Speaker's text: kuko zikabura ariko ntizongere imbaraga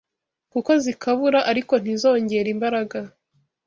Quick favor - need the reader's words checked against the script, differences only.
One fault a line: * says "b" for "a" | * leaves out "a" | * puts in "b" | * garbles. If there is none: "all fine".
all fine